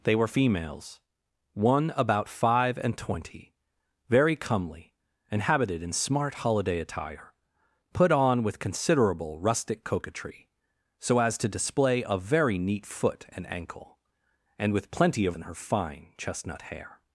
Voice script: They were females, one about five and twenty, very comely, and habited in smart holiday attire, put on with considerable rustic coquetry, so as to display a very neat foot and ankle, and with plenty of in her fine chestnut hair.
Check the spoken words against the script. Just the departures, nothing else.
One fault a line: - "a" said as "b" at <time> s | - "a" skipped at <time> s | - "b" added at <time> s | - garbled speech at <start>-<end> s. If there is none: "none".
none